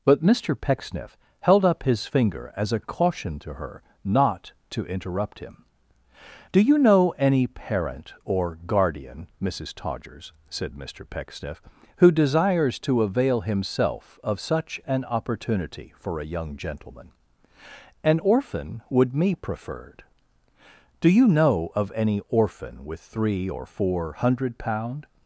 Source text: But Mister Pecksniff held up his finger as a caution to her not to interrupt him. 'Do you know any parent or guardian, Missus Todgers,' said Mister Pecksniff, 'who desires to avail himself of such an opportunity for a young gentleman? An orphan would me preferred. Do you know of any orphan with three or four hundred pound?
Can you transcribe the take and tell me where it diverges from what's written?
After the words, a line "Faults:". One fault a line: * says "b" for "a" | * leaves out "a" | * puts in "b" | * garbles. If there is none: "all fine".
But Mister Pecksniff held up his finger as a caution to her not to interrupt him. 'Do you know any parent or guardian, Missus Todgers,' said Mister Pecksniff, 'who desires to avail himself of such an opportunity for a young gentleman? An orphan would me preferred. Do you know of any orphan with three or four hundred pound?
Faults:
all fine